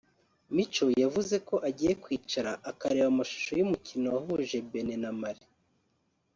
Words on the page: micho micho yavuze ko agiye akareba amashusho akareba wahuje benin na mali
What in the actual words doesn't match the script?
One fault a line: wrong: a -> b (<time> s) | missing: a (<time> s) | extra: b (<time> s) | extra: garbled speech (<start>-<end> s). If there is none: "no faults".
missing: micho (0.8 s)
extra: kwicara (2.0 s)
wrong: akareba -> y'umukino (3.6 s)